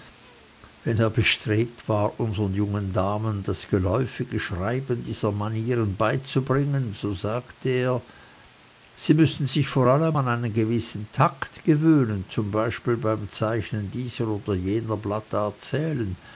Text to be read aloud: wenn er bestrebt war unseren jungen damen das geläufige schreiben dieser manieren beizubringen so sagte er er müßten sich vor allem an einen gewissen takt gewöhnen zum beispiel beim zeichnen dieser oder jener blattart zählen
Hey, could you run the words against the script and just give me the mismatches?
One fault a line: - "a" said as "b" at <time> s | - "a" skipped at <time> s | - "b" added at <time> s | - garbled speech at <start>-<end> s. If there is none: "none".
- "er" said as "sie" at 8.9 s